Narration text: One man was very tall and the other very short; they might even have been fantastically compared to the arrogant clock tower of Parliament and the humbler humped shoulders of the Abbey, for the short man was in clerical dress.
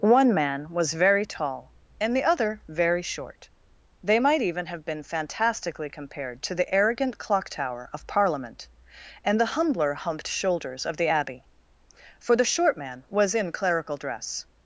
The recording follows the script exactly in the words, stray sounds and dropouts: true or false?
true